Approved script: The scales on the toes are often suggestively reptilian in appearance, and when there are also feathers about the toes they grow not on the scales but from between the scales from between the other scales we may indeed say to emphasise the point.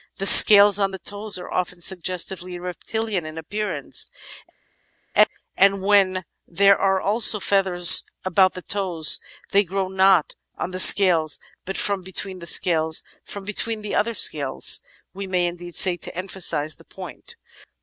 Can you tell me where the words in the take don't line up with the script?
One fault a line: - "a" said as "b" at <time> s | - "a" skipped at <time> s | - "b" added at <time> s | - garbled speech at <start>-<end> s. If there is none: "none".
none